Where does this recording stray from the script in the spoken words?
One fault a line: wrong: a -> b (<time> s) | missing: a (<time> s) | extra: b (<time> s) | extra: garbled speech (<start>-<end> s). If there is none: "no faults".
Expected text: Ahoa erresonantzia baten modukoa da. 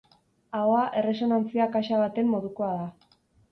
extra: kaxa (1.8 s)